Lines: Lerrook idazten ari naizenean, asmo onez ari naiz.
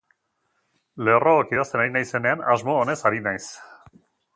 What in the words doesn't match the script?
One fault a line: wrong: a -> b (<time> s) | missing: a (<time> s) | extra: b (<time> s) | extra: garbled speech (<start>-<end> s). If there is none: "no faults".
no faults